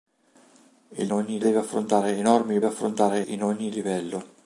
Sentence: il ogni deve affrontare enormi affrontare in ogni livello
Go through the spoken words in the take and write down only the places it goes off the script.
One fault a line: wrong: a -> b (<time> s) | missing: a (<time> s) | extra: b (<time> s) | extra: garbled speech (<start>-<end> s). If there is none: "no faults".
no faults